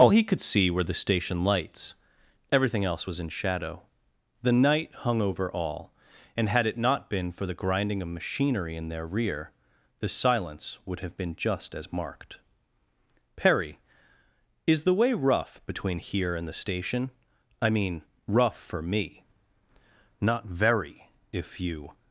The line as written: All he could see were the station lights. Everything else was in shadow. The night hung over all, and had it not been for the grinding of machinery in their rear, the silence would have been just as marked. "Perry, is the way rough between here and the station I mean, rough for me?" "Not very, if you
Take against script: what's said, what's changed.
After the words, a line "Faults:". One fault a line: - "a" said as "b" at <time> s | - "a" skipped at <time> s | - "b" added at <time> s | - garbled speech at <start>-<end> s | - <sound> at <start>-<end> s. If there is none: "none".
All he could see were the station lights. Everything else was in shadow. The night hung over all, and had it not been for the grinding of machinery in their rear, the silence would have been just as marked. "Perry, is the way rough between here and the station I mean, rough for me?" "Not very, if you
Faults:
none